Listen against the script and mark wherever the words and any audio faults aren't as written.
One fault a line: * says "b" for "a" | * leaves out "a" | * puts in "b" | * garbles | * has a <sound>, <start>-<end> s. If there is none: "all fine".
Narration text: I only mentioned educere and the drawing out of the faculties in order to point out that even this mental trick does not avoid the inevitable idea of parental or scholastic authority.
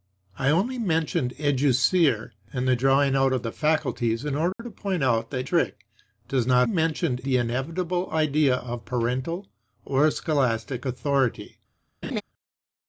* has a dropout, 4.5-4.6 s
* leaves out "even this mental"
* says "mentioned" for "avoid"
* has a laugh, 12.0-12.2 s